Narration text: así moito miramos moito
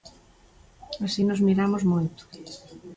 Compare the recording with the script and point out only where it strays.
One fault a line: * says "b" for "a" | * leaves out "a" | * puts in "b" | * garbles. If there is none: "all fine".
* says "nos" for "moito"